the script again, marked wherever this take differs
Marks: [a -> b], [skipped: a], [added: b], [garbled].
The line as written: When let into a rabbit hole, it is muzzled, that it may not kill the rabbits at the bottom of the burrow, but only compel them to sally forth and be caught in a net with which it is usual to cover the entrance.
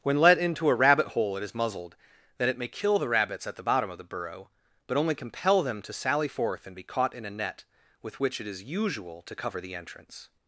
When let into a rabbit hole, it is muzzled, that it may [skipped: not] kill the rabbits at the bottom of the burrow, but only compel them to sally forth and be caught in a net with which it is usual to cover the entrance.